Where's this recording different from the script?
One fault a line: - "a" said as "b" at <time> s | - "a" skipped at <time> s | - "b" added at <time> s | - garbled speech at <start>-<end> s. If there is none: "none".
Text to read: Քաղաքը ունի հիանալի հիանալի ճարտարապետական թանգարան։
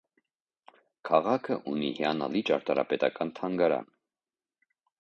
- "հիանալի" skipped at 2.4 s